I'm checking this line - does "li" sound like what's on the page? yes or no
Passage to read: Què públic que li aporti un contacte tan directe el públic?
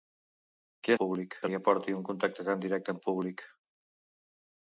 yes